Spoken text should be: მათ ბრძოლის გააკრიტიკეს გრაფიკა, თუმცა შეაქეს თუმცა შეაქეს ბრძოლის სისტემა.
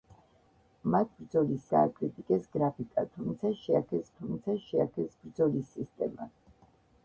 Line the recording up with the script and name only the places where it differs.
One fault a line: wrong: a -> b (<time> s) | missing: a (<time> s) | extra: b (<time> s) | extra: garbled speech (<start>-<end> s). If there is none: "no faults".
no faults